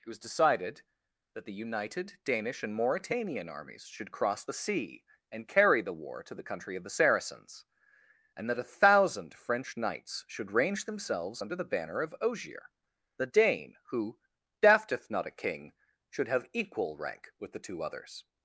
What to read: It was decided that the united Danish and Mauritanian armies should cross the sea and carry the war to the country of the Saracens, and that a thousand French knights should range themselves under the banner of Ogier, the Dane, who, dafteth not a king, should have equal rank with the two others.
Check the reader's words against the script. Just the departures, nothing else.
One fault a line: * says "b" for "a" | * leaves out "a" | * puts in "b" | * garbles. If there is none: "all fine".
all fine